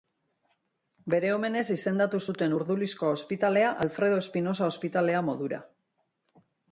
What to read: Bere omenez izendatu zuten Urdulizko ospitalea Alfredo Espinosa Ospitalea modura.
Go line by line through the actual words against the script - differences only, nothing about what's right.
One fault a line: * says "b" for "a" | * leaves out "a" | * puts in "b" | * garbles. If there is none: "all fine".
all fine